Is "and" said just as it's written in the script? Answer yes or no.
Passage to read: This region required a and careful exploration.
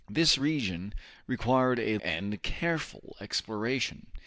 yes